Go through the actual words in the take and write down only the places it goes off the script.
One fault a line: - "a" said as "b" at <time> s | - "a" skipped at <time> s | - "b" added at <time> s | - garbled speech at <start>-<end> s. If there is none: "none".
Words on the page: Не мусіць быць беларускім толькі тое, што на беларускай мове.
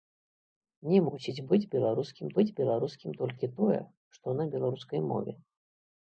- "быць беларускім" added at 2.4 s